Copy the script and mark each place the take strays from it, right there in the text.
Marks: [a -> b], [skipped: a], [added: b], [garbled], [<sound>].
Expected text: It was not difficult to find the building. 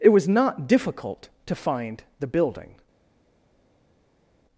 It was not difficult to find the building.